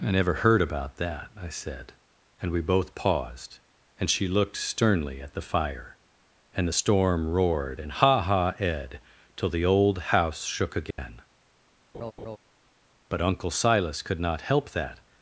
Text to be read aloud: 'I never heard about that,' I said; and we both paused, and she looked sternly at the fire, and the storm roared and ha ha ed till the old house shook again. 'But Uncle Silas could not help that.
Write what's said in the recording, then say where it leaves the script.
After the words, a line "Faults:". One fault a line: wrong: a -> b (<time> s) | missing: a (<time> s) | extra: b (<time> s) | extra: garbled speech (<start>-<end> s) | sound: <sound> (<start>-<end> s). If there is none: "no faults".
'I never heard about that,' I said; and we both paused, and she looked sternly at the fire, and the storm roared and ha ha ed till the old house shook again. 'But Uncle Silas could not help that.
Faults:
sound: dropout (10.9-11.0 s)
sound: laugh (11.9-12.4 s)